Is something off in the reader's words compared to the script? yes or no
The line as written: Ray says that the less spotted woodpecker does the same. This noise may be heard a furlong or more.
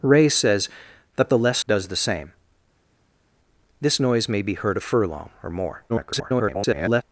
yes